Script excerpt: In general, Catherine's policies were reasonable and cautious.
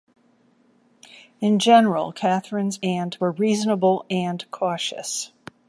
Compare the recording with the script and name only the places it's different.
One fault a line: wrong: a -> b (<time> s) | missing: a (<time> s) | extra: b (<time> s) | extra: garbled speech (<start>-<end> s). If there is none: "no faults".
wrong: policies -> and (2.8 s)